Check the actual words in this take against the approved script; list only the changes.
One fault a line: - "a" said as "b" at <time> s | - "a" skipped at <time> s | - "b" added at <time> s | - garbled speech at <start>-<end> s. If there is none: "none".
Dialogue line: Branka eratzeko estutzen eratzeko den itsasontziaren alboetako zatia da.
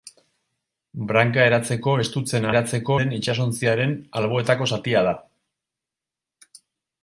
none